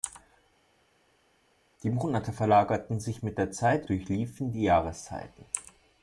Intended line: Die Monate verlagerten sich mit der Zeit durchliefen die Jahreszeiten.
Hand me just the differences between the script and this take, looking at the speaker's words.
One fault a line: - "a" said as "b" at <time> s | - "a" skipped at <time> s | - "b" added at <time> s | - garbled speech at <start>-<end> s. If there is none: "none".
none